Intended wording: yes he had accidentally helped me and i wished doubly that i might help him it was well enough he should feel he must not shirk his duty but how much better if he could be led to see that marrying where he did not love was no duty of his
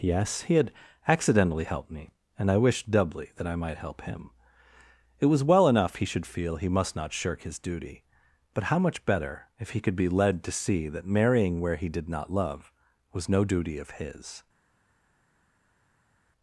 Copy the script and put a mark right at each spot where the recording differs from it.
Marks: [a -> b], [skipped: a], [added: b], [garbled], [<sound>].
yes he had accidentally helped me and i wished doubly that i might help him it was well enough he should feel he must not shirk his duty but how much better if he could be led to see that marrying where he did not love was no duty of his